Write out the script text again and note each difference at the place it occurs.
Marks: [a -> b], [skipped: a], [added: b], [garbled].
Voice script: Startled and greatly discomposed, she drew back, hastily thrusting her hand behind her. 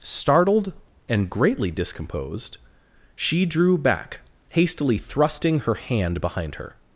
Startled and greatly discomposed, she drew back, hastily thrusting her hand behind her.